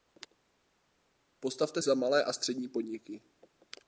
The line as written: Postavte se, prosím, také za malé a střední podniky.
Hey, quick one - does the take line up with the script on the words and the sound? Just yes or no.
no